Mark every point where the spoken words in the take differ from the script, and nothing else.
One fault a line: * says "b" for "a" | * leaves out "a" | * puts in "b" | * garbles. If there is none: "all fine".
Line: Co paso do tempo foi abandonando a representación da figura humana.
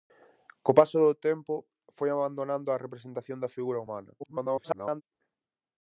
* garbles